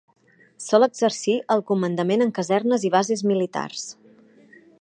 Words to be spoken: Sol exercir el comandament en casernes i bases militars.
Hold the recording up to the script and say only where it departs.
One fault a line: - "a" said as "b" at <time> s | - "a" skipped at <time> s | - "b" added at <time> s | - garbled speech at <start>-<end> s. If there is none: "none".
none